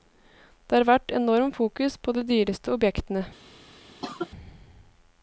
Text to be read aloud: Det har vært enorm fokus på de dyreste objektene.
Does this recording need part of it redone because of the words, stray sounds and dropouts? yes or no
yes